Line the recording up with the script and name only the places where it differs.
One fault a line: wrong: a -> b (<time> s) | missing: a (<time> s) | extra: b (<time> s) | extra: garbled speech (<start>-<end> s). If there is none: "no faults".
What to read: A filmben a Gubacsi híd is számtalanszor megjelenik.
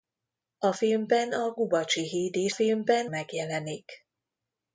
wrong: számtalanszor -> filmben (2.5 s)